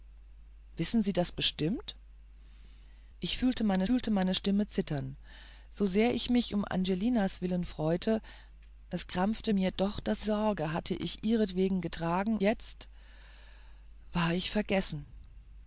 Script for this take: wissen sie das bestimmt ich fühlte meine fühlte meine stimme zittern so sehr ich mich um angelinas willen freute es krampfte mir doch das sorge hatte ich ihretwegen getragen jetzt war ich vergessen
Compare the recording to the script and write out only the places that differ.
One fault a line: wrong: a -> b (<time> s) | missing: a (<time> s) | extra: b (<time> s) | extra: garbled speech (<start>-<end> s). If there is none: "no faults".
no faults